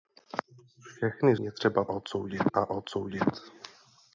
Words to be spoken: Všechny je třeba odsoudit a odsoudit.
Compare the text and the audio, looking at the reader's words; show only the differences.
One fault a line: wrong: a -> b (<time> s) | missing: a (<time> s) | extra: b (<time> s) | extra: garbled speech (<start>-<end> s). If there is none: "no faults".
no faults